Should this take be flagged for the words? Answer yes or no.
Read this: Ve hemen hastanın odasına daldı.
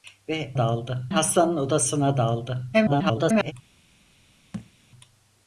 yes